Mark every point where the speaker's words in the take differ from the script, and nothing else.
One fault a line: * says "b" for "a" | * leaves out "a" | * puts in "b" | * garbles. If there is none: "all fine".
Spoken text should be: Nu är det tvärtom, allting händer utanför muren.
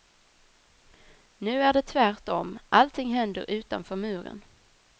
all fine